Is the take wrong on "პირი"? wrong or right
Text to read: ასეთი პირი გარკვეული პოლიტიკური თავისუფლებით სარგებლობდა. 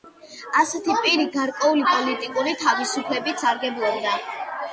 right